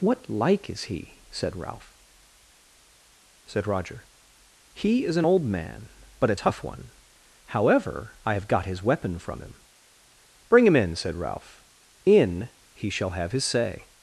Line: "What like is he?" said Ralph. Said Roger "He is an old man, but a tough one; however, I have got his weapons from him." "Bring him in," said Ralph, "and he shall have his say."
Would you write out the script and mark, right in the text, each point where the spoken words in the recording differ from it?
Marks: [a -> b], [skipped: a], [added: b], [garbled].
"What like is he?" said Ralph. Said Roger "He is an old man, but a tough one; however, I have got his [weapons -> weapon] from him." "Bring him in," said Ralph, ["and -> in] he shall have his say."